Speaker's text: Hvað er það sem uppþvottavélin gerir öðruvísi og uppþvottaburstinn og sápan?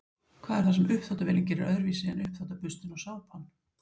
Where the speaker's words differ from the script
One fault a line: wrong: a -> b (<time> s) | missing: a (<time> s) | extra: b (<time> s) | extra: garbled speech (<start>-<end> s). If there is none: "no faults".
wrong: og -> en (2.1 s)